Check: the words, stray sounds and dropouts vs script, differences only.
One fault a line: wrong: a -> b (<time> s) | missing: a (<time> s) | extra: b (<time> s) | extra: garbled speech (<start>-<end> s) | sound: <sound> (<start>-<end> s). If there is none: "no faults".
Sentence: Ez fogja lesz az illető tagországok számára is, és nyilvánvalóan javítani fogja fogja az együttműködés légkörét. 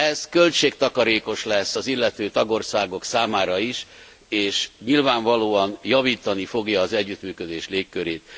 wrong: fogja -> költségtakarékos (0.3 s)
missing: fogja (6.8 s)